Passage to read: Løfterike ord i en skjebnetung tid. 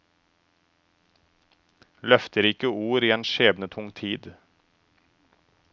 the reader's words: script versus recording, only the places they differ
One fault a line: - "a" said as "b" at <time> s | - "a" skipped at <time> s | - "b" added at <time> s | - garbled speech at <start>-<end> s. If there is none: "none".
none